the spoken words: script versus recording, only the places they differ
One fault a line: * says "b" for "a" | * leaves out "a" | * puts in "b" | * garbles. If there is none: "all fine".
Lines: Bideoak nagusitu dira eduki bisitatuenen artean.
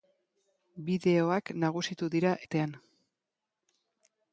* leaves out "eduki bisitatuenen"